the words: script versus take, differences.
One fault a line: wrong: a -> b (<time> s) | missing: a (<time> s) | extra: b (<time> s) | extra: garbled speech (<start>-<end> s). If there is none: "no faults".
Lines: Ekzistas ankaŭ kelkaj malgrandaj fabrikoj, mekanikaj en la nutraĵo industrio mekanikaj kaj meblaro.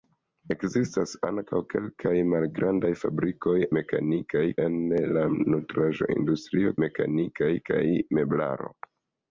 no faults